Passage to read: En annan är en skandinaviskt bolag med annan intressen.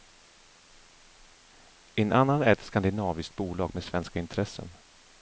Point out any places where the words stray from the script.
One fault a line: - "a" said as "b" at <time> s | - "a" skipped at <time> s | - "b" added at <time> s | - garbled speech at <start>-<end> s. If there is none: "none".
- "en" said as "ett" at 2.5 s
- "annan" said as "svenska" at 3.8 s